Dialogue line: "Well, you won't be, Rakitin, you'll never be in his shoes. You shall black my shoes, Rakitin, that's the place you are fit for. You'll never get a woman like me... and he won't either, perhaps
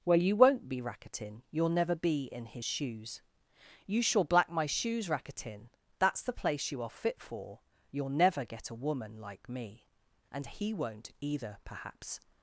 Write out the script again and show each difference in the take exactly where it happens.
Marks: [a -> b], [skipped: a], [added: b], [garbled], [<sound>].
"Well, you won't be, Rakitin, you'll never be in his shoes. You shall black my shoes, Rakitin, that's the place you are fit for. You'll never get a woman like me... and he won't either, perhaps